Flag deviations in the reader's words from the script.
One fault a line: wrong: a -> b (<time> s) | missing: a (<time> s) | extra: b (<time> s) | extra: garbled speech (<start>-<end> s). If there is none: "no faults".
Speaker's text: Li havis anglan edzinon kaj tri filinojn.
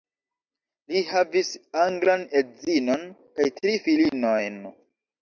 no faults